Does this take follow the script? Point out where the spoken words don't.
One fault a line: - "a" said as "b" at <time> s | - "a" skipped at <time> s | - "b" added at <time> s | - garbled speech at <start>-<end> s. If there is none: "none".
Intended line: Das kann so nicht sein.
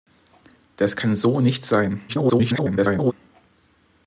- garbled speech at 2.1-3.1 s